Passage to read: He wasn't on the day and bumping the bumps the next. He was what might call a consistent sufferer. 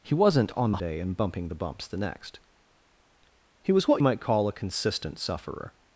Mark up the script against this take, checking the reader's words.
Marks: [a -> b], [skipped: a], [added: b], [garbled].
He wasn't on the day and bumping the bumps the next. He was what might call a consistent sufferer.